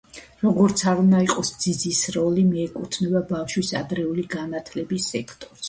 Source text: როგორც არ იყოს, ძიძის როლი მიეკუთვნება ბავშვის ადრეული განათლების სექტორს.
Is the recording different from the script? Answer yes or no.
yes